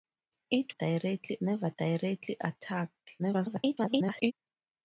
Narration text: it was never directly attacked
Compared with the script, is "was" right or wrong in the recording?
wrong